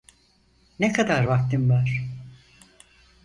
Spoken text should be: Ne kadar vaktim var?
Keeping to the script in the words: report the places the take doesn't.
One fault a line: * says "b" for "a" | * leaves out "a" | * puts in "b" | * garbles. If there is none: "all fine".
all fine